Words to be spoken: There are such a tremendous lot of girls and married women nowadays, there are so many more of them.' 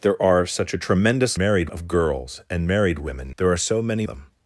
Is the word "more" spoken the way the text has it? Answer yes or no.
no